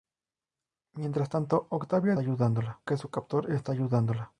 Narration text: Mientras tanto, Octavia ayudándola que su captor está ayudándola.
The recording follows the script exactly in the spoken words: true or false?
true